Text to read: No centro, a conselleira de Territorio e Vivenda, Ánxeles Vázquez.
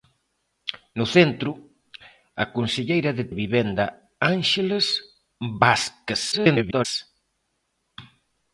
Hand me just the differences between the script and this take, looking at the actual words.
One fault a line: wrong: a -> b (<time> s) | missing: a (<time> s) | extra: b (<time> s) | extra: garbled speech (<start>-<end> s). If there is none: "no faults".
missing: Territorio (3.2 s)
extra: garbled speech (6.3-6.9 s)